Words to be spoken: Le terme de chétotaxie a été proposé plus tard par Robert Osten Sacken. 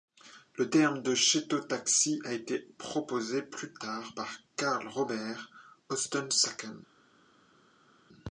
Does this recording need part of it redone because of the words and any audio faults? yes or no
yes